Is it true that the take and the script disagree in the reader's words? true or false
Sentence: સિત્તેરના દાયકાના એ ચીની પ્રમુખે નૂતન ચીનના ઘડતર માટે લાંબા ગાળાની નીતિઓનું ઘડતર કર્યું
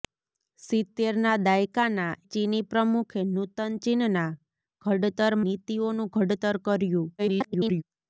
true